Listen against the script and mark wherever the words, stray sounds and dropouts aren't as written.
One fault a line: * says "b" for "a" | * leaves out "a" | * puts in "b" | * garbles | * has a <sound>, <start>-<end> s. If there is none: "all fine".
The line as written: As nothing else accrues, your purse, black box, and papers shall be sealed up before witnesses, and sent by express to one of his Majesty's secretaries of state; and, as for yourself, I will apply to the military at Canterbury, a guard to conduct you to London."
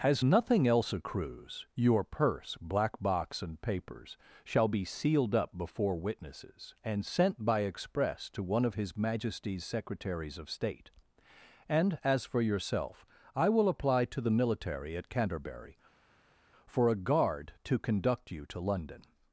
* puts in "for"